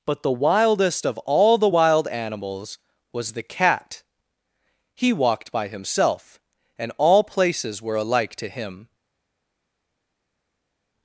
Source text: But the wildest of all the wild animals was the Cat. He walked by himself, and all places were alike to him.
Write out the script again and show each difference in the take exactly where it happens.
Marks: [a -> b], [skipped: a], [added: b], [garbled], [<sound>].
But the wildest of all the wild animals was the Cat. He walked by himself, and all places were alike to him.